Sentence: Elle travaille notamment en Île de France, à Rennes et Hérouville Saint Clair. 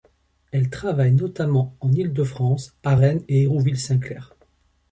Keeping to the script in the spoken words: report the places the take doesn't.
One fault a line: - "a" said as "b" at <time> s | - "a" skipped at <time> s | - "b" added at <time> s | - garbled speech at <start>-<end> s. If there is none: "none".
none